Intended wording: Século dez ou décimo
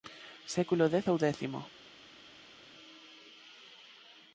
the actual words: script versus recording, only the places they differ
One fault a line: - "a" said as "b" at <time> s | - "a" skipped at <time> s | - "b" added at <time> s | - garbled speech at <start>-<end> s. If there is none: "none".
none